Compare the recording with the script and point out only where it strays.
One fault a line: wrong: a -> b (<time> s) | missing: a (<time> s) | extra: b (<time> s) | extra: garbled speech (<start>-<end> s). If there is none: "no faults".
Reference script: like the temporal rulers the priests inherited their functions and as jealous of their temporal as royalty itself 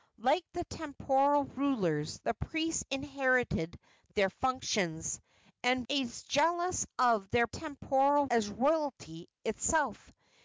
no faults